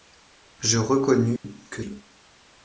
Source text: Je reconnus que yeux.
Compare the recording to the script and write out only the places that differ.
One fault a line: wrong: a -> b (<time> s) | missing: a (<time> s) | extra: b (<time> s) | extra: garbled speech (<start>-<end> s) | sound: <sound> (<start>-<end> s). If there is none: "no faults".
sound: dropout (1.4-1.4 s)